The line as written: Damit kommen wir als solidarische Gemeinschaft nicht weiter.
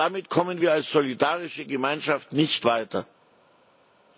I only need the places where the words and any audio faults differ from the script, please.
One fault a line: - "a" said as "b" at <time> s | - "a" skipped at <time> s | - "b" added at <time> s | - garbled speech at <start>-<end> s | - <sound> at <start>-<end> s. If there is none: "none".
none